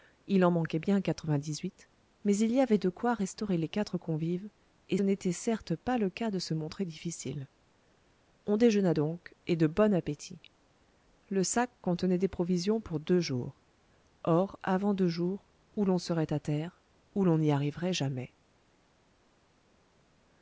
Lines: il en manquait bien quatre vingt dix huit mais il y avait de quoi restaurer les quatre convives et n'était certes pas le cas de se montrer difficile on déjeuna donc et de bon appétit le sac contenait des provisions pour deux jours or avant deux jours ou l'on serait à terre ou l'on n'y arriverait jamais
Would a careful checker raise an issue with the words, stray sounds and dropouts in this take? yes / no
no